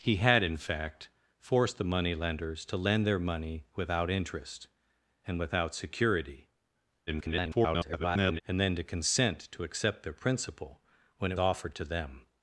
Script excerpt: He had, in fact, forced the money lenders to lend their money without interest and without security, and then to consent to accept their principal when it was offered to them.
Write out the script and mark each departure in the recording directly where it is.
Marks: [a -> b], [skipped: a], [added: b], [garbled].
He had, in fact, forced the money lenders to lend their money without interest and without security, [garbled] and then to consent to accept their principal when it [skipped: was] offered to them.